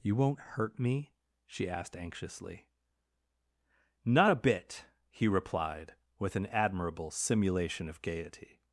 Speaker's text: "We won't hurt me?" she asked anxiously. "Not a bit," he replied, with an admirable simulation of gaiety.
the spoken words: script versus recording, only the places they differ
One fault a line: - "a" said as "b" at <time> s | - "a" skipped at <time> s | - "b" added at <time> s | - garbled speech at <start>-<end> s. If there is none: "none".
- "We" said as "You" at 0.0 s